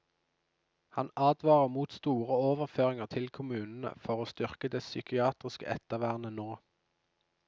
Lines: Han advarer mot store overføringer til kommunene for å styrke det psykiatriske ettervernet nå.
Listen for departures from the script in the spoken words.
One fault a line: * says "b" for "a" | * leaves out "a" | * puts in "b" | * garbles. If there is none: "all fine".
all fine